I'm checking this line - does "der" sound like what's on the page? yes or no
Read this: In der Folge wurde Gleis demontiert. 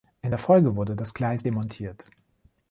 yes